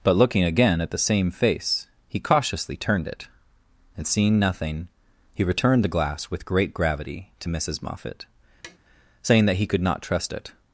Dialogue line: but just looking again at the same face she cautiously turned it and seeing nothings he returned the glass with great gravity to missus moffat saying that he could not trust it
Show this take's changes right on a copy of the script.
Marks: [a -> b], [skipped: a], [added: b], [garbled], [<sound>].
but [skipped: just] looking again at the same face [she -> he] cautiously turned it and seeing [nothings -> nothing] he returned the glass with great gravity to missus moffat [tap] saying that he could not trust it